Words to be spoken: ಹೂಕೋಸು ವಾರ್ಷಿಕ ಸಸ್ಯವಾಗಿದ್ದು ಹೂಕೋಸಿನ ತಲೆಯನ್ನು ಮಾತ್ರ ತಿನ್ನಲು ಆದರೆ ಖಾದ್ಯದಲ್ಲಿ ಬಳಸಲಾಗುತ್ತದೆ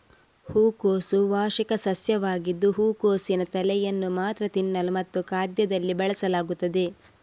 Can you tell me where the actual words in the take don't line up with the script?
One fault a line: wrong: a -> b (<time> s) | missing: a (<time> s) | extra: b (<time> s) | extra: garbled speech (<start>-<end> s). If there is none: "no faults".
wrong: ಆದರೆ -> ಮತ್ತು (4.9 s)